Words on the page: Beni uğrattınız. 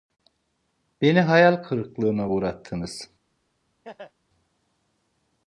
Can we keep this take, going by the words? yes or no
no